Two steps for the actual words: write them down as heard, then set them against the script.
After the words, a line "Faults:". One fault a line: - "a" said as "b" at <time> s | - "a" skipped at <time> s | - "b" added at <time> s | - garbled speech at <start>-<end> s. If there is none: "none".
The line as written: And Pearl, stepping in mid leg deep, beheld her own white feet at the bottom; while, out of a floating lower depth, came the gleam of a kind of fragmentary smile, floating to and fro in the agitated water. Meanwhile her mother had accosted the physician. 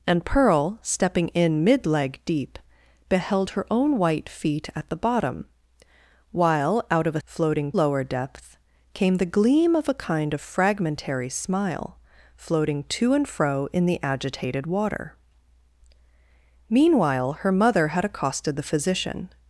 And Pearl, stepping in mid leg deep, beheld her own white feet at the bottom; while, out of a floating lower depth, came the gleam of a kind of fragmentary smile, floating to and fro in the agitated water. Meanwhile her mother had accosted the physician.
Faults:
none